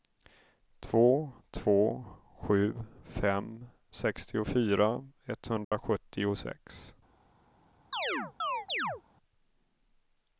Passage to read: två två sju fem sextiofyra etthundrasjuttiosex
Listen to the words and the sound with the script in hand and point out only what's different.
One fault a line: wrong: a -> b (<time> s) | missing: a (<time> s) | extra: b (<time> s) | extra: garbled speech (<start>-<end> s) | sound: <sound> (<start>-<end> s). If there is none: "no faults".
sound: dropout (5.6-5.7 s)
sound: chirp (7.9-9.0 s)